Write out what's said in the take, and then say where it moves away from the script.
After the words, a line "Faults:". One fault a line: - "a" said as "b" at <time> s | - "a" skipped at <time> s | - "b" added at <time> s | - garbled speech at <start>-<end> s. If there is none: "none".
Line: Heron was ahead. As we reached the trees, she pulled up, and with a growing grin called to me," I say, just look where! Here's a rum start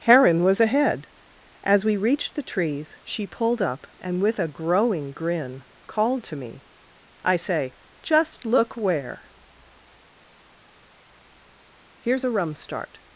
Heron was ahead. As we reached the trees, she pulled up, and with a growing grin called to me," I say, just look where! Here's a rum start
Faults:
none